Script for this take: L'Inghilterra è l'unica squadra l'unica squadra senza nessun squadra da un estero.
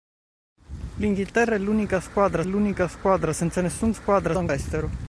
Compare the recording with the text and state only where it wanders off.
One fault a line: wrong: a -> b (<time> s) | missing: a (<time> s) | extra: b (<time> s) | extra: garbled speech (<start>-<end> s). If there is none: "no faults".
no faults